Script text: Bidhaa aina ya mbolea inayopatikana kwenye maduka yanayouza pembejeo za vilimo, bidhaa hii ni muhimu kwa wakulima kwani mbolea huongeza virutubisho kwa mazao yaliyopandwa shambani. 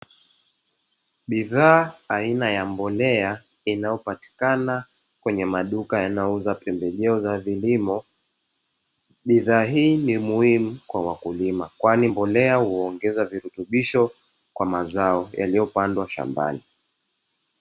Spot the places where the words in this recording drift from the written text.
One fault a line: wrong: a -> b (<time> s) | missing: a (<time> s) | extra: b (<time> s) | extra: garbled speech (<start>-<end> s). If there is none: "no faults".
no faults